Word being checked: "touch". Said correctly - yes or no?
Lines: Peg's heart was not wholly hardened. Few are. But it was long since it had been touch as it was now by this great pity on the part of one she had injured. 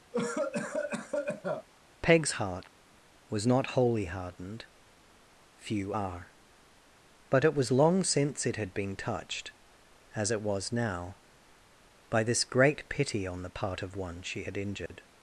no